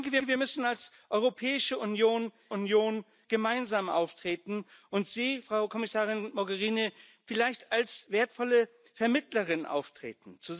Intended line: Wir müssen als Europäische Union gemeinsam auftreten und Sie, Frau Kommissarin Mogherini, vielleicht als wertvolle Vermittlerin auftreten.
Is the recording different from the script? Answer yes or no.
yes